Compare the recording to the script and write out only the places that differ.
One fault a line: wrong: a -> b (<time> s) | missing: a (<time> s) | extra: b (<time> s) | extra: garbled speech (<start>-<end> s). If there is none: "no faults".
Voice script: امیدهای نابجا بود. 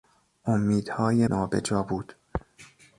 no faults